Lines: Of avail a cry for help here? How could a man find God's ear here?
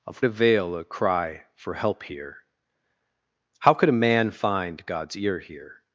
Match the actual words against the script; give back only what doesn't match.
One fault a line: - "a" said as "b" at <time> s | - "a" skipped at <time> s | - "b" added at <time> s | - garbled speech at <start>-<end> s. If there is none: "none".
none